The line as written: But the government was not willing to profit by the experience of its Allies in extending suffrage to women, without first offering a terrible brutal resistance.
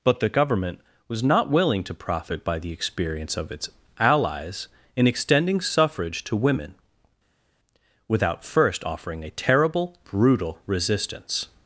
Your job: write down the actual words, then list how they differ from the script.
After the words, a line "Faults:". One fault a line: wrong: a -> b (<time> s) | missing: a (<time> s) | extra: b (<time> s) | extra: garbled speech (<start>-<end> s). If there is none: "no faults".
But the government was not willing to profit by the experience of its Allies in extending suffrage to women, without first offering a terrible brutal resistance.
Faults:
no faults